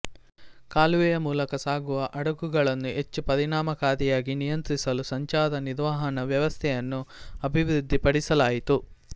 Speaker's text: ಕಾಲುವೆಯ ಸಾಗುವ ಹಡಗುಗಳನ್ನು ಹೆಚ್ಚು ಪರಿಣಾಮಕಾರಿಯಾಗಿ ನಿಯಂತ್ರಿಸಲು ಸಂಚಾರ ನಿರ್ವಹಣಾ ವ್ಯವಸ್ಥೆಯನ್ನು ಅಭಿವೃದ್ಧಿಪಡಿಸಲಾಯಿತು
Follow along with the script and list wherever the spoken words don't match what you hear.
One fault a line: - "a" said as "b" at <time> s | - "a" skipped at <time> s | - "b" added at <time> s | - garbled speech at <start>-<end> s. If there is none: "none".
- "ಮೂಲಕ" added at 1.2 s